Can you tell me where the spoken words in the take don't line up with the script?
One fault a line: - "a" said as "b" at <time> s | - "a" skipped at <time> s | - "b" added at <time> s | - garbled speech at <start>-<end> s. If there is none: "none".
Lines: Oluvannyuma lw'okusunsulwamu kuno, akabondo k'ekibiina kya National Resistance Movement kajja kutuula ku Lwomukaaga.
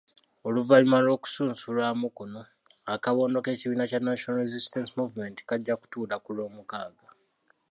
none